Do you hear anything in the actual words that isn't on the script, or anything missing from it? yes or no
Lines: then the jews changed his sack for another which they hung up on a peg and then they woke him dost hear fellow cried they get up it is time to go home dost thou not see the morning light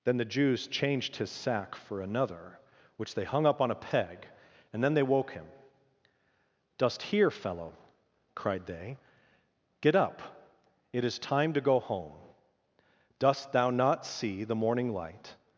no